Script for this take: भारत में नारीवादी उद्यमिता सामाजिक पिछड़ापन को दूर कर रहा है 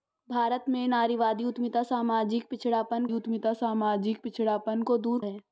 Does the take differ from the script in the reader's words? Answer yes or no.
yes